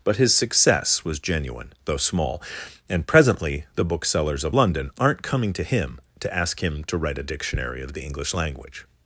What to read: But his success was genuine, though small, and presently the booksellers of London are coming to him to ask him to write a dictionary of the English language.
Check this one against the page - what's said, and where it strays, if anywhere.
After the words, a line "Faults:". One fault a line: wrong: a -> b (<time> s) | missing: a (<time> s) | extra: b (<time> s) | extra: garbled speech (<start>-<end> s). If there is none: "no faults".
But his success was genuine, though small, and presently the booksellers of London aren't coming to him to ask him to write a dictionary of the English language.
Faults:
wrong: are -> aren't (5.0 s)